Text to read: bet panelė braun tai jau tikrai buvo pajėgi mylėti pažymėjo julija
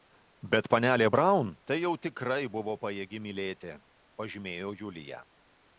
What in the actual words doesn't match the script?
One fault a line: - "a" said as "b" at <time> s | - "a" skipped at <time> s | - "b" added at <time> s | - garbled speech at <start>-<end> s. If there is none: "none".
none